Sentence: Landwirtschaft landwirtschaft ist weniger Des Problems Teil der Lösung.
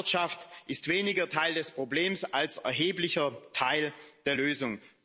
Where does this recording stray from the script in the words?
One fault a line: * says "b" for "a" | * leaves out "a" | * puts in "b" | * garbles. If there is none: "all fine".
* leaves out "landwirtschaft"
* puts in "Teil"
* puts in "als erheblicher"